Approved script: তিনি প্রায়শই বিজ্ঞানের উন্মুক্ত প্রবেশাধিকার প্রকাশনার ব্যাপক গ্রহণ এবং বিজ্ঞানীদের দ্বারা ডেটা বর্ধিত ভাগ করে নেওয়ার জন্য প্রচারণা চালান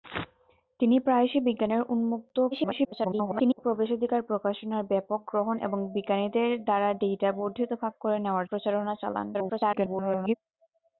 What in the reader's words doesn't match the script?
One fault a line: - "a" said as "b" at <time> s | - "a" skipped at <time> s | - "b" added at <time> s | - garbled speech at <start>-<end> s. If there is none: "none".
- garbled speech at 2.5-3.6 s
- "জন্য" skipped at 8.5 s
- garbled speech at 9.3-10.4 s